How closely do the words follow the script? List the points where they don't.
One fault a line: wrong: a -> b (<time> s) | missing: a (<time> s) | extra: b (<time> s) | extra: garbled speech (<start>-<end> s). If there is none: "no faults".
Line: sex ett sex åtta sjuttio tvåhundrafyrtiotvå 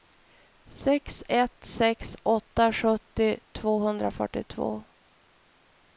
no faults